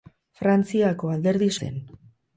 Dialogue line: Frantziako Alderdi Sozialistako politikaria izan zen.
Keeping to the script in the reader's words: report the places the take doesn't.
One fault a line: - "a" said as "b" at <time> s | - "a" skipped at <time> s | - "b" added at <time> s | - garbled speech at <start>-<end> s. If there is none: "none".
- "Sozialistako politikaria izan" skipped at 1.5 s